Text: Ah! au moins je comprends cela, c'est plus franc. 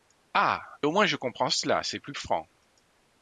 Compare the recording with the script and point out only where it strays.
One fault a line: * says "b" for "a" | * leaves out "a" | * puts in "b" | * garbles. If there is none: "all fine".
all fine